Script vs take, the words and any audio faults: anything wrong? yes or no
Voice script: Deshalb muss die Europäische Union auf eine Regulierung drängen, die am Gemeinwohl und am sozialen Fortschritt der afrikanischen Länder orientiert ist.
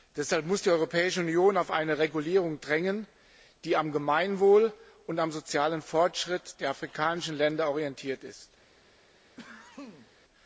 yes